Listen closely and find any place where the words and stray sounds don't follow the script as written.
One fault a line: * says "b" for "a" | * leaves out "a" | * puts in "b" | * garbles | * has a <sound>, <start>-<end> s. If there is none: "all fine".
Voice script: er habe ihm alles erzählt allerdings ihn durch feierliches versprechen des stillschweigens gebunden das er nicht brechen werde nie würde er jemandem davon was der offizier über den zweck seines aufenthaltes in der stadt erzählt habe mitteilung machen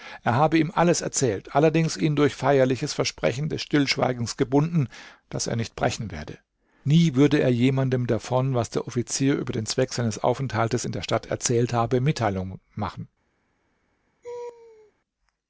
* has a laugh, 14.2-14.9 s